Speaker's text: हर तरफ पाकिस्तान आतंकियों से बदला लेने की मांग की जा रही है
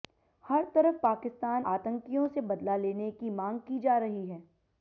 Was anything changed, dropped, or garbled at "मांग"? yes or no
no